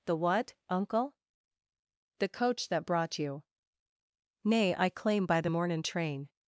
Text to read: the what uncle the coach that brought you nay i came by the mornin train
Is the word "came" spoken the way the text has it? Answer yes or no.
no